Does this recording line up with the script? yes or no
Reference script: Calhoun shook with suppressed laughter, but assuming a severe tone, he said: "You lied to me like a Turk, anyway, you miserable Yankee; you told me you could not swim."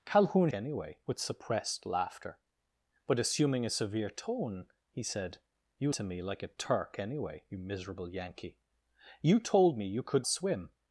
no